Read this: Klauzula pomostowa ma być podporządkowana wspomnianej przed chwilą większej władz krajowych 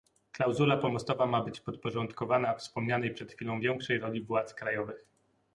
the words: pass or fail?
fail